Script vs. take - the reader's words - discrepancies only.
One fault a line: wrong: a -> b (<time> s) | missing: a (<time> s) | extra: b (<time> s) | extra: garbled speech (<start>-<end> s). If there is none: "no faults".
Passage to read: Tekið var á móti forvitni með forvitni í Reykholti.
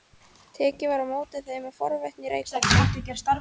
wrong: forvitni -> þeim (1.5 s)